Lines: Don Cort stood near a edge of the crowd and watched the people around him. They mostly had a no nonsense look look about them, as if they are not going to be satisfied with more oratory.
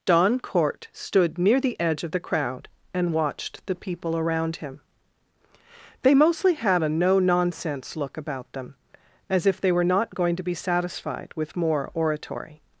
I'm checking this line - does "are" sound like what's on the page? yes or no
no